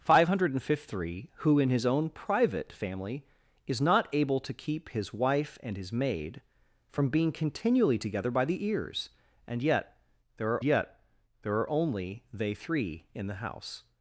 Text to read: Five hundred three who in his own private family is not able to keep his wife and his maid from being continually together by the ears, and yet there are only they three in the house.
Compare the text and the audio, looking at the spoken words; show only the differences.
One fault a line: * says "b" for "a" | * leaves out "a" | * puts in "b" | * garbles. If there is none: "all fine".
* puts in "yet there are"